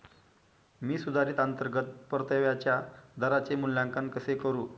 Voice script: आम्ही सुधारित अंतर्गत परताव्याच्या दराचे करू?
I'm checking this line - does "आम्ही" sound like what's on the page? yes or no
no